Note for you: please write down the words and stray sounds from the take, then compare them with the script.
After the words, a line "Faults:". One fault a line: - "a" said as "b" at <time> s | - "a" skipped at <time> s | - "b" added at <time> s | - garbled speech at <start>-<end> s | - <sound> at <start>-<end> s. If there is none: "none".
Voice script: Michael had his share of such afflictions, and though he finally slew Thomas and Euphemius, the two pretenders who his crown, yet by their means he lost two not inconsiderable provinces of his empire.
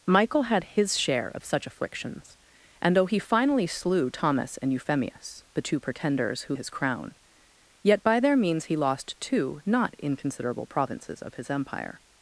Michael had his share of such afflictions, and though he finally slew Thomas and Euphemius, the two pretenders who his crown, yet by their means he lost two not inconsiderable provinces of his empire.
Faults:
none